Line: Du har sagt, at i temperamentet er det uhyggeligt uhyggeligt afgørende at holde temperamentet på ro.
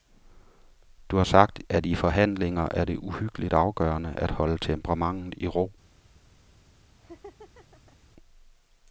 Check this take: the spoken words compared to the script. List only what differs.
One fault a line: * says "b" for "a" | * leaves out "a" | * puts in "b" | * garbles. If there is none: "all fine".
* says "forhandlinger" for "temperamentet"
* leaves out "uhyggeligt"
* says "i" for "på"